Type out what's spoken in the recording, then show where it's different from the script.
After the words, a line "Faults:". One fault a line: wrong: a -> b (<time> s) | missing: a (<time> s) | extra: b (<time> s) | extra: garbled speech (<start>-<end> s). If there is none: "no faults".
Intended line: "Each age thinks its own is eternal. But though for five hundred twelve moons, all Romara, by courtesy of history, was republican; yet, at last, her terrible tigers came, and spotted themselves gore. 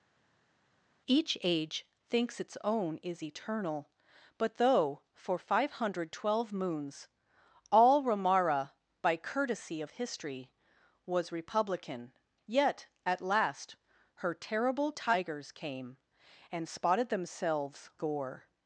"Each age thinks its own is eternal. But though for five hundred twelve moons, all Romara, by courtesy of history, was republican; yet, at last, her terrible tigers came, and spotted themselves gore.
Faults:
no faults